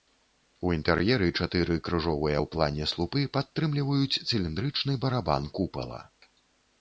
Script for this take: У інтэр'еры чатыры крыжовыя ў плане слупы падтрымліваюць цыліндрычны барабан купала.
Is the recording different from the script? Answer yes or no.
no